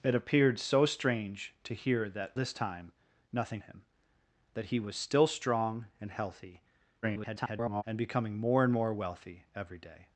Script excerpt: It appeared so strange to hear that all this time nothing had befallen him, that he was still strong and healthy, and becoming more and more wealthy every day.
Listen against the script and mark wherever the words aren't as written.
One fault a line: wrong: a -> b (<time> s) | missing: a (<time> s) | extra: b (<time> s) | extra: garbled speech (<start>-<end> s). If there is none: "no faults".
missing: all (2.3 s)
missing: had befallen (3.6 s)
extra: garbled speech (7.0-7.8 s)